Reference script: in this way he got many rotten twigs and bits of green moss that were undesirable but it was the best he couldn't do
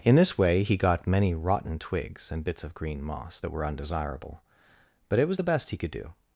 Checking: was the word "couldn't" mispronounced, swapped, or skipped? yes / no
yes